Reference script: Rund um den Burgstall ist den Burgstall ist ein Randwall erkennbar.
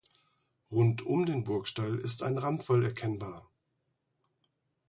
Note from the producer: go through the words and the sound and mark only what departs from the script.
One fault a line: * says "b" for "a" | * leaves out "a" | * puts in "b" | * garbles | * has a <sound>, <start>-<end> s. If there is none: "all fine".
* leaves out "den Burgstall ist"